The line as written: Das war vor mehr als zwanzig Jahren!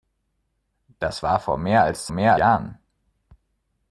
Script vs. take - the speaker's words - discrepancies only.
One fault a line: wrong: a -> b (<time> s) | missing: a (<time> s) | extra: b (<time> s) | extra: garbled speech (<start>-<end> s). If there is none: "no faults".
wrong: zwanzig -> mehr (2.1 s)